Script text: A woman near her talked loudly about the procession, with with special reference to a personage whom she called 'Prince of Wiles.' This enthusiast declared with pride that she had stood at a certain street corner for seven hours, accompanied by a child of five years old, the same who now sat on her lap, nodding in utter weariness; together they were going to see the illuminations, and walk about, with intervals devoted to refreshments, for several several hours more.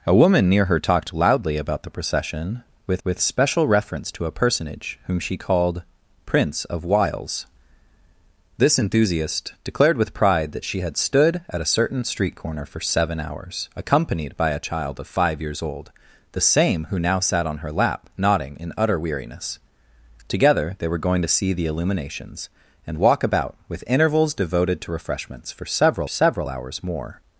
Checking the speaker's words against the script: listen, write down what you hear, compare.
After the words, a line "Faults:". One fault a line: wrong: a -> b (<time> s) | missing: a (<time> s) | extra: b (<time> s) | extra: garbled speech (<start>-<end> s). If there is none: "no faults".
A woman near her talked loudly about the procession, with with special reference to a personage whom she called 'Prince of Wiles.' This enthusiast declared with pride that she had stood at a certain street corner for seven hours, accompanied by a child of five years old, the same who now sat on her lap, nodding in utter weariness; together they were going to see the illuminations, and walk about, with intervals devoted to refreshments, for several several hours more.
Faults:
no faults